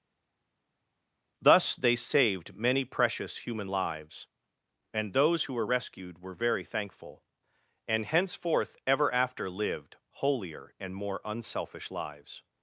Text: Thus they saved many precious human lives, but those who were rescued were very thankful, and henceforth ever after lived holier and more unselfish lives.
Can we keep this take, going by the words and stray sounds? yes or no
no